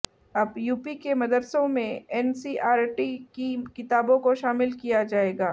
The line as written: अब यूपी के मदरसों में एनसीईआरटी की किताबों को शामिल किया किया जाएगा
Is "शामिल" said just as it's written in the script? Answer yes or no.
yes